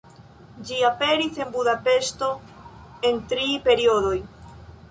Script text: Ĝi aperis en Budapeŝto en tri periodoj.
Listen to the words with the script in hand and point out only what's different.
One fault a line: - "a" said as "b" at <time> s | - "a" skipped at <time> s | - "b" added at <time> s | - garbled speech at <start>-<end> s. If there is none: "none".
none